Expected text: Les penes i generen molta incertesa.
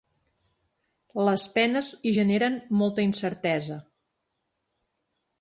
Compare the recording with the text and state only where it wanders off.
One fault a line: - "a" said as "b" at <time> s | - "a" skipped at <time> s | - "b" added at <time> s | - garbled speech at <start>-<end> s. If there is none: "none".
none